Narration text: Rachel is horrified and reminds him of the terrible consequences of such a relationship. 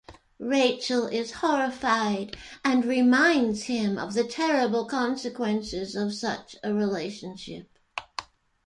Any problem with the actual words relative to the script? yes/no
no